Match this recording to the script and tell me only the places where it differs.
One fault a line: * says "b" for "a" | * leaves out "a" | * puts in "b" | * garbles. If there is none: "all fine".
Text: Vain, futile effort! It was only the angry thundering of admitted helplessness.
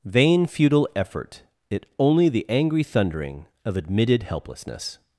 * leaves out "was"